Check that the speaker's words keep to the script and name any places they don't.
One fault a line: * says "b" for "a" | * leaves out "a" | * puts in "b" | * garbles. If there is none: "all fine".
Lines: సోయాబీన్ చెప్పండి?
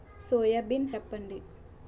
all fine